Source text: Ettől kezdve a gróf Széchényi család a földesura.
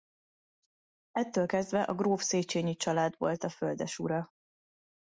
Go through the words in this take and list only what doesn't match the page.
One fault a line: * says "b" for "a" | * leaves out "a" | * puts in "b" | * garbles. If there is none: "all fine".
* puts in "volt"